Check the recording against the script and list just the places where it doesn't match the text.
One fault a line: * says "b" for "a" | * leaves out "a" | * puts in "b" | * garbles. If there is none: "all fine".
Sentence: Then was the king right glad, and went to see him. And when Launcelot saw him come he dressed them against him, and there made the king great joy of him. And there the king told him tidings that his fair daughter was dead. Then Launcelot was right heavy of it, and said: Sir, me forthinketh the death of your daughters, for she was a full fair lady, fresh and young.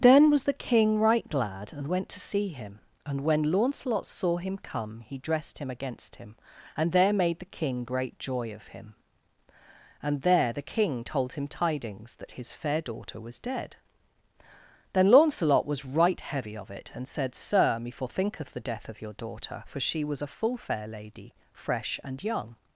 * says "him" for "them"
* says "daughter" for "daughters"